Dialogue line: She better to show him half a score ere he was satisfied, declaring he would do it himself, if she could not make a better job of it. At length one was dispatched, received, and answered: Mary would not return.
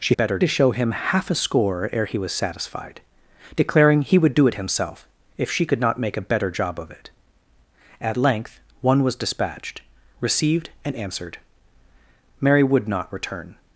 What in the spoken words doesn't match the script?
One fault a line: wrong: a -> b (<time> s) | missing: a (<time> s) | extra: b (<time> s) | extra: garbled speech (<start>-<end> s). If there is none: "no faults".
no faults